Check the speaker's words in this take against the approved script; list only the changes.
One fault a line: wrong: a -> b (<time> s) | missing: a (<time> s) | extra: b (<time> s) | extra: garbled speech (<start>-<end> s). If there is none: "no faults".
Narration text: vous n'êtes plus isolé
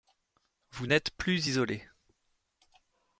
no faults